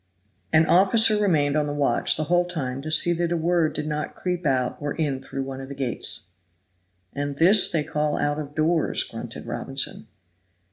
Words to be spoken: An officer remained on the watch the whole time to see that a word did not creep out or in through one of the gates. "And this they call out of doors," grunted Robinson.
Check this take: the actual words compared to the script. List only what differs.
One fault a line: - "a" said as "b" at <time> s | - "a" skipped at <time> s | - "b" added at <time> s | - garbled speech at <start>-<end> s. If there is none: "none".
none